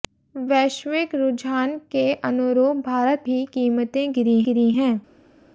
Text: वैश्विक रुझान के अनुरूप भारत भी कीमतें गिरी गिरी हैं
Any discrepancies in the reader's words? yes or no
no